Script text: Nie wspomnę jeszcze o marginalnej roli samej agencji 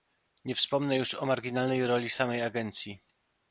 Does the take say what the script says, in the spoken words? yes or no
no